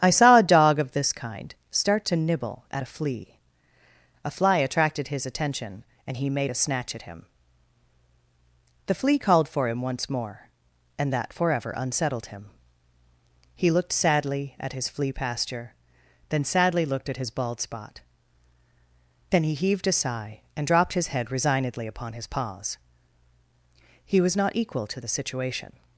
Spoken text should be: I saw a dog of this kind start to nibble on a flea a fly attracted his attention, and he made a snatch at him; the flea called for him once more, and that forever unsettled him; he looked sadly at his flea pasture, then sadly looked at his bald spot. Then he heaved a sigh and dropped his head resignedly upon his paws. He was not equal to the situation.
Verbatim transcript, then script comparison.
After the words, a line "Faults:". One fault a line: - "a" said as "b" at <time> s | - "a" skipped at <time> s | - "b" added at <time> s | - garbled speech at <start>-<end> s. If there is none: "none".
I saw a dog of this kind start to nibble at a flea a fly attracted his attention, and he made a snatch at him; the flea called for him once more, and that forever unsettled him; he looked sadly at his flea pasture, then sadly looked at his bald spot. Then he heaved a sigh and dropped his head resignedly upon his paws. He was not equal to the situation.
Faults:
- "on" said as "at" at 2.7 s